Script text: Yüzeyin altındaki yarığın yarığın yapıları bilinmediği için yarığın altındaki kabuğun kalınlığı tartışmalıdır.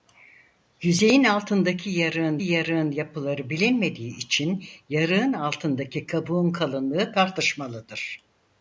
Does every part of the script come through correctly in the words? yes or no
yes